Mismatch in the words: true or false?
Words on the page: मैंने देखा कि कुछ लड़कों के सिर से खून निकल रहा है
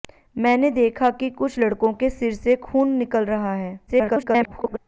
true